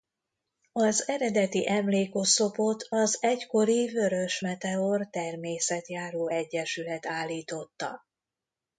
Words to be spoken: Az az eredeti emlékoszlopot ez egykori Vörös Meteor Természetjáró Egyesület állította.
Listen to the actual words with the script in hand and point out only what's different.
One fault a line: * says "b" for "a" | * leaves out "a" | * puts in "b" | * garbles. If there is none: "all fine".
* leaves out "az"
* says "az" for "ez"